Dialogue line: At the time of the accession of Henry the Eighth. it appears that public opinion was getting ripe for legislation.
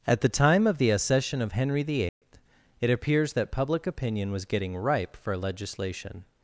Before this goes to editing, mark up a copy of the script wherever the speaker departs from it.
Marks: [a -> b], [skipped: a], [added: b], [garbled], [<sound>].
At the time of the accession of Henry the Eighth. [dropout] it appears that public opinion was getting ripe for legislation.